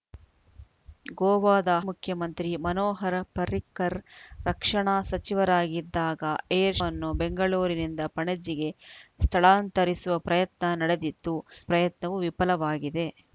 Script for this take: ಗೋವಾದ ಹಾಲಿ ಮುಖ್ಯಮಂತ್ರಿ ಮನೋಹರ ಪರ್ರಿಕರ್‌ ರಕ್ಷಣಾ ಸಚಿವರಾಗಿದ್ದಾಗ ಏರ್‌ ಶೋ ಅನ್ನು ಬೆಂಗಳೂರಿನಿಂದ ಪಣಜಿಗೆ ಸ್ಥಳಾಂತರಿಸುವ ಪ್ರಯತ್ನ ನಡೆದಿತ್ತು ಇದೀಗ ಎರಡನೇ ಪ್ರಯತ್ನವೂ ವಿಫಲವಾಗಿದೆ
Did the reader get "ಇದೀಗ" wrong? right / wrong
wrong